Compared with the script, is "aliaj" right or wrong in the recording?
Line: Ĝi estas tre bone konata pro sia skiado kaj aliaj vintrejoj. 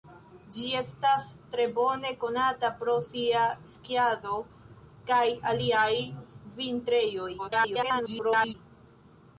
right